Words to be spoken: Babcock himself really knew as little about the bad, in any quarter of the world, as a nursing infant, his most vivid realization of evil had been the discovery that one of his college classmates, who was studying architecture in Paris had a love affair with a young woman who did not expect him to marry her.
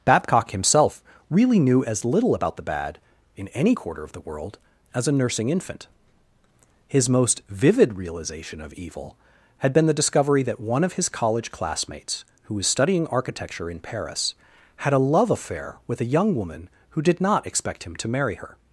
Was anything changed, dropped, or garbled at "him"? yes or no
no